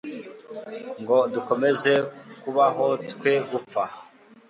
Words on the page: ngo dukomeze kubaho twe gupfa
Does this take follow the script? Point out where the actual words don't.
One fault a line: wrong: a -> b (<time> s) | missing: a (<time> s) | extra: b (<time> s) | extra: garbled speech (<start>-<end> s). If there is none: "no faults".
no faults